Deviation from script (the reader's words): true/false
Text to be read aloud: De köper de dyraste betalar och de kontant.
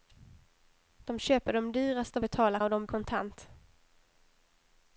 false